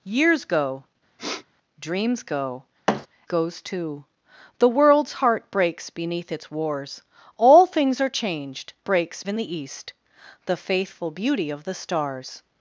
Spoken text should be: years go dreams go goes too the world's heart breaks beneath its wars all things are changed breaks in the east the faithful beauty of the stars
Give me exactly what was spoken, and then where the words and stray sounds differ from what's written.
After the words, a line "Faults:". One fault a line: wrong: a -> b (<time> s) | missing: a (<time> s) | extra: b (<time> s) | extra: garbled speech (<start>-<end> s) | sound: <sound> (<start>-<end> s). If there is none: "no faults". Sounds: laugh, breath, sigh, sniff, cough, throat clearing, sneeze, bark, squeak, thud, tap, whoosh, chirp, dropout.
years go dreams go goes too the world's heart breaks beneath its wars all things are changed breaks in the east the faithful beauty of the stars
Faults:
sound: sniff (1.2-1.5 s)
sound: thud (2.9-3.1 s)